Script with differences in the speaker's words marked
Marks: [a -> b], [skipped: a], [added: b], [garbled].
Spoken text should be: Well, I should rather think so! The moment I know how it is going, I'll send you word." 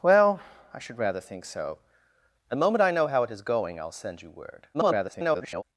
Well, I should rather think so! The moment I know how it is going, I'll send you word." [garbled]